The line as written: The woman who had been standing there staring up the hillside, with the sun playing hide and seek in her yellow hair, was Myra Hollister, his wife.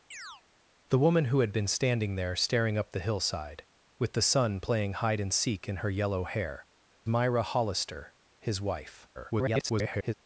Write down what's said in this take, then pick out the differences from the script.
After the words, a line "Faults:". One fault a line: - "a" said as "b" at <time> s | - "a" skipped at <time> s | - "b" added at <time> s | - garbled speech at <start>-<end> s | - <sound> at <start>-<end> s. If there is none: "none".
The woman who had been standing there staring up the hillside, with the sun playing hide and seek in her yellow hair, Myra Hollister, his wife. [garbled]
Faults:
- chirp at 0.1-0.4 s
- "was" skipped at 6.7 s
- garbled speech at 9.1-10.1 s